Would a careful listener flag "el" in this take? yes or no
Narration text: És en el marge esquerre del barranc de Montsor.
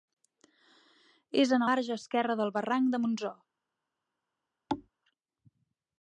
yes